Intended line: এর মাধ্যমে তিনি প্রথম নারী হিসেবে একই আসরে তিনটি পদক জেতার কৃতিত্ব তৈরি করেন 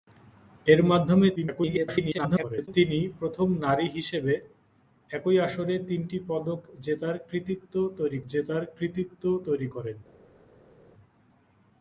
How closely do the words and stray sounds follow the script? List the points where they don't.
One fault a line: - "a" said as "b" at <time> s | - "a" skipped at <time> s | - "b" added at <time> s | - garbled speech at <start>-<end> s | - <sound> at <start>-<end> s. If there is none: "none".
- garbled speech at 1.4-2.7 s
- "জেতার কৃতিত্ব তৈরি" added at 8.3 s